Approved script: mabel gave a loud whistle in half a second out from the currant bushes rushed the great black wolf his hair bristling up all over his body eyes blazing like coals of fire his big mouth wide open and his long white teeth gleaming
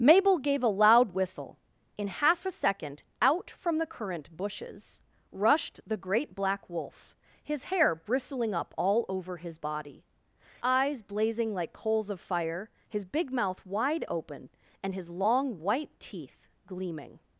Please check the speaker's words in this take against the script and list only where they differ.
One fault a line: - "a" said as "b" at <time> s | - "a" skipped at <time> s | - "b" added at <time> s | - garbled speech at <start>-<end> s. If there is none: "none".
none